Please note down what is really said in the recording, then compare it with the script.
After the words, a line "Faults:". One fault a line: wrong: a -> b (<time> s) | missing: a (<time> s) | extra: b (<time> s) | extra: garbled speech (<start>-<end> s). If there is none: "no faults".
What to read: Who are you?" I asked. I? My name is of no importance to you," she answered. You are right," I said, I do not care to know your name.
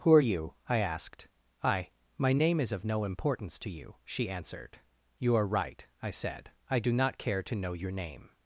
Who are you?" I asked. I? My name is of no importance to you," she answered. You are right," I said, I do not care to know your name.
Faults:
no faults